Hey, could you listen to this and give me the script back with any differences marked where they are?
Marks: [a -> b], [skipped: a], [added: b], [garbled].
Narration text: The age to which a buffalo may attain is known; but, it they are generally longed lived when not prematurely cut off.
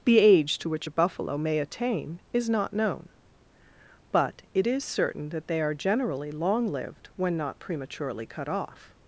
The age to which a buffalo may attain is [added: not] known; but, it [added: is certain that] they are generally [longed -> long] lived when not prematurely cut off.